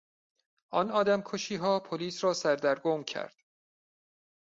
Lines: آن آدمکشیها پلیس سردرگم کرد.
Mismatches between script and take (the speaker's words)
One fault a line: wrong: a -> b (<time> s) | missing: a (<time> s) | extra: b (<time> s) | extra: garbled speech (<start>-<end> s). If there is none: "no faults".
extra: را (2.2 s)